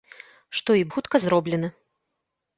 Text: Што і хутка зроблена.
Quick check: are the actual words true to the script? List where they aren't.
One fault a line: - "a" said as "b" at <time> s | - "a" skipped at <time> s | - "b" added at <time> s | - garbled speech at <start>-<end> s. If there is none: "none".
none